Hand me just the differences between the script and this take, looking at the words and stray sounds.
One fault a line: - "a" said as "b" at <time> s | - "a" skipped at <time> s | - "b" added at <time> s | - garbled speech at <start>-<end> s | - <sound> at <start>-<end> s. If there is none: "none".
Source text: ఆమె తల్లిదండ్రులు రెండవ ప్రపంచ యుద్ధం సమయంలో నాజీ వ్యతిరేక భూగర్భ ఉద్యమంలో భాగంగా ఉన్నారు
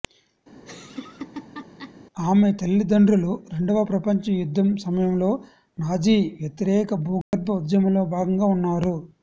- laugh at 0.6-1.9 s
- dropout at 7.2-7.3 s